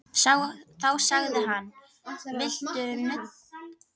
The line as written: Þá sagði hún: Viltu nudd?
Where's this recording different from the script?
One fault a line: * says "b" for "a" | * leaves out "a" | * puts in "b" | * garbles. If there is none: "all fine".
* says "hann" for "hún"